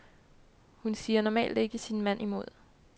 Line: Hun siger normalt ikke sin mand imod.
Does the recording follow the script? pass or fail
pass